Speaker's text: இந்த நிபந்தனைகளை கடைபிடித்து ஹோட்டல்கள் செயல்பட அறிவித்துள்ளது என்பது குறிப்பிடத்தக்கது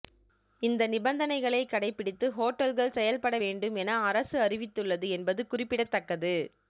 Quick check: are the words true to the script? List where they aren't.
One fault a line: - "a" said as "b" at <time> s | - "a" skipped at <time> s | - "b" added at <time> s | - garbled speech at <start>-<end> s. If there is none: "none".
- "வேண்டும் என அரசு" added at 3.4 s